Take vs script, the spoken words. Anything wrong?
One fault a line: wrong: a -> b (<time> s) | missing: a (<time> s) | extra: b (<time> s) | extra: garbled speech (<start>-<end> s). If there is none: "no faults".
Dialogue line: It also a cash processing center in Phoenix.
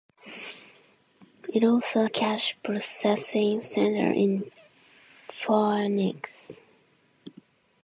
no faults